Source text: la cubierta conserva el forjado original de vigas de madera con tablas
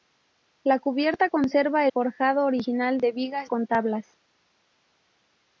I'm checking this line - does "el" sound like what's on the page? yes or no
no